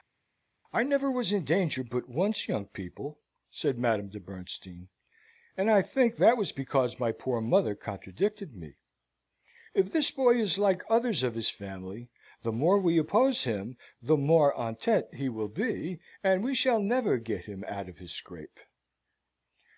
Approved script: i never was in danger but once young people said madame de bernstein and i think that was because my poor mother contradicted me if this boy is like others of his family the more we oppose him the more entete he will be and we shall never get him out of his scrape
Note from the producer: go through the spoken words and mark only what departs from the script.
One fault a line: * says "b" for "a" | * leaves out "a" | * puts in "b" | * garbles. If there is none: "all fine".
all fine